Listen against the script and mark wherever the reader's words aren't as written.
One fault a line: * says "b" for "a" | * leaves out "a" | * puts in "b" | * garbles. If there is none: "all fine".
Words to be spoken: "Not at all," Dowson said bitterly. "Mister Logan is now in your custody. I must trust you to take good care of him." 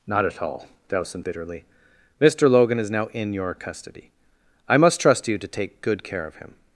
* leaves out "said"